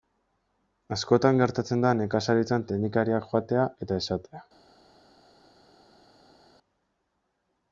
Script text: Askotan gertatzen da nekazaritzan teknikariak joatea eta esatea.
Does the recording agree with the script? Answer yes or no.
yes